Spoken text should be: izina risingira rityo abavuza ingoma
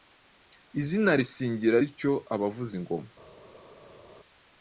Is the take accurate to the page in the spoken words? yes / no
yes